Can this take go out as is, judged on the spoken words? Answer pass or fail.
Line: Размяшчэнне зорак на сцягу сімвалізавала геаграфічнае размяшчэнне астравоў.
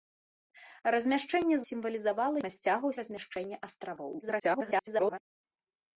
fail